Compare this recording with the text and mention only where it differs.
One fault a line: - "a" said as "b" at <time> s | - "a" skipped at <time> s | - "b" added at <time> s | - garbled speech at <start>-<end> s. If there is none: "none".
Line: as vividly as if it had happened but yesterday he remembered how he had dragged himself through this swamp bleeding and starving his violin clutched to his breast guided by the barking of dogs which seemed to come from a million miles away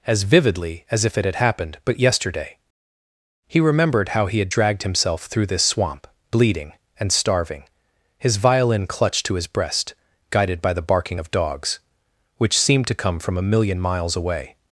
none